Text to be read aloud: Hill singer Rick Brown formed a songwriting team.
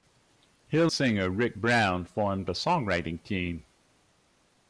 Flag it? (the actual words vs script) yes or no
no